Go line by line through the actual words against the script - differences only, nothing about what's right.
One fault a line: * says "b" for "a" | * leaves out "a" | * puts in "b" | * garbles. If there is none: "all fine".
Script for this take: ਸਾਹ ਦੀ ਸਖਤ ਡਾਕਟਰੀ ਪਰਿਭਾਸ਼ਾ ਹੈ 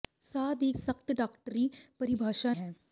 all fine